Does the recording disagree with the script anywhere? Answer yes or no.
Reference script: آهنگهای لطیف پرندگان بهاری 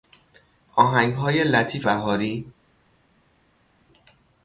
yes